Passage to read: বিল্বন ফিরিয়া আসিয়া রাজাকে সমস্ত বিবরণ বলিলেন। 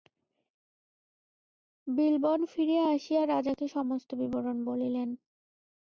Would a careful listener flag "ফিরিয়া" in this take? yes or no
no